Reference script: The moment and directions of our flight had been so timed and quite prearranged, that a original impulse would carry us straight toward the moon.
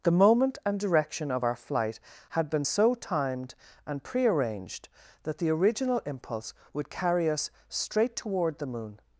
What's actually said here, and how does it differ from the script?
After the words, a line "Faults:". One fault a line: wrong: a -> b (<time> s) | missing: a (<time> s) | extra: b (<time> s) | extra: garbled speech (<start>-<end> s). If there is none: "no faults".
The moment and direction of our flight had been so timed and prearranged, that the original impulse would carry us straight toward the moon.
Faults:
wrong: directions -> direction (0.8 s)
missing: quite (4.0 s)
wrong: a -> the (5.4 s)